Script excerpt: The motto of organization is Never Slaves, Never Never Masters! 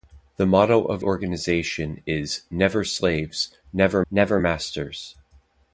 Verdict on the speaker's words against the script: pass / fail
pass